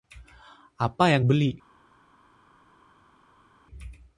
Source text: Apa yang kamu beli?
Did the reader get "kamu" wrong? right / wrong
wrong